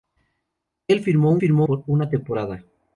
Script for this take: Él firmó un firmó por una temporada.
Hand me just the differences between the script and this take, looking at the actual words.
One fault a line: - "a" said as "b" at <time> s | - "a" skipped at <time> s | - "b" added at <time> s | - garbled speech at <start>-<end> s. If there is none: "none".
none